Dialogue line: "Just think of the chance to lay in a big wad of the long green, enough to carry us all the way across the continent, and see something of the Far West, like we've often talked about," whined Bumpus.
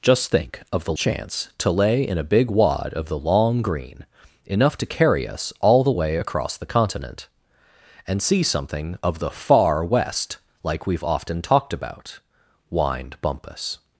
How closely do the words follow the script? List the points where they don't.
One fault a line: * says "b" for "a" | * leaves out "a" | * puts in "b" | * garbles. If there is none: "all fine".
all fine